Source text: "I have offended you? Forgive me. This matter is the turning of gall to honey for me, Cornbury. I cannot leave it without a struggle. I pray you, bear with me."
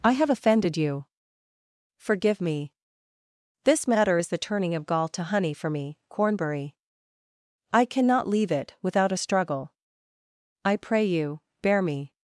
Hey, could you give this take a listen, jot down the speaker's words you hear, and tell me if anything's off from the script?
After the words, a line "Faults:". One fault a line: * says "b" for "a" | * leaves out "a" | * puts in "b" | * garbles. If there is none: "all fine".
"I have offended you? Forgive me. This matter is the turning of gall to honey for me, Cornbury. I cannot leave it without a struggle. I pray you, bear me."
Faults:
* leaves out "with"